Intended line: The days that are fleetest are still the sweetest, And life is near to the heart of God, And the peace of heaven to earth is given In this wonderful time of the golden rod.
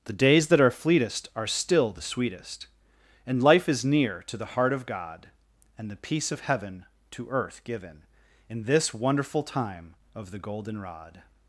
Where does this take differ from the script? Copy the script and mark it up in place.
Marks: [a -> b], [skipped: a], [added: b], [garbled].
The days that are fleetest are still the sweetest, And life is near to the heart of God, And the peace of heaven to earth [skipped: is] given In this wonderful time of the golden rod.